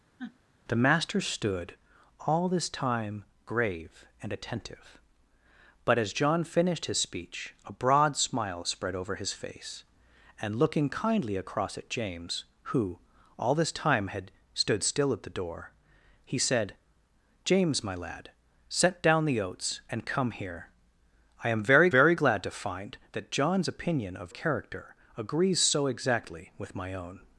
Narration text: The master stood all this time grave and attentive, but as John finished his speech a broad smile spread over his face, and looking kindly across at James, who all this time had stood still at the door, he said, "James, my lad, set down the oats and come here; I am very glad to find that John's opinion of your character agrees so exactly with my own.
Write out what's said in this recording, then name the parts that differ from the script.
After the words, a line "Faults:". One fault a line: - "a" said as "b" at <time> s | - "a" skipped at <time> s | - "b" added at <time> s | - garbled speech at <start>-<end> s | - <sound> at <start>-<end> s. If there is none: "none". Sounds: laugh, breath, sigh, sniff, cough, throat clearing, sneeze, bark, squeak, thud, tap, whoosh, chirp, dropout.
The master stood all this time grave and attentive, but as John finished his speech a broad smile spread over his face, and looking kindly across at James, who all this time had stood still at the door, he said, "James, my lad, set down the oats and come here; I am very very glad to find that John's opinion of character agrees so exactly with my own.
Faults:
- sniff at 0.2-0.4 s
- "very" added at 21.9 s
- "your" skipped at 24.3 s